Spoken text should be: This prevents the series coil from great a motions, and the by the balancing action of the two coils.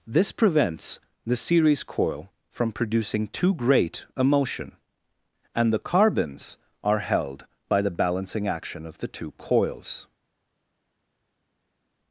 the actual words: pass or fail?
fail